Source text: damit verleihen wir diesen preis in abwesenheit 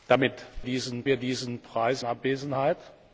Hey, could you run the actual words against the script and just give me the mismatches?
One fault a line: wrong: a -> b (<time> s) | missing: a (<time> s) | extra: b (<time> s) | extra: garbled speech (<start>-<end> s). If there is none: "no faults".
wrong: verleihen -> diesen (0.6 s)
missing: in (2.0 s)